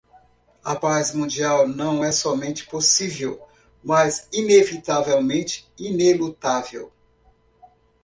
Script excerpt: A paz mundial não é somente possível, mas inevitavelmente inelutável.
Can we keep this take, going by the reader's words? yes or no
yes